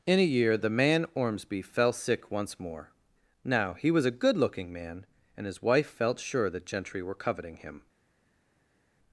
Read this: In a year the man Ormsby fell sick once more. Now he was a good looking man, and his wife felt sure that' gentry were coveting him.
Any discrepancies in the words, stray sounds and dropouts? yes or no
no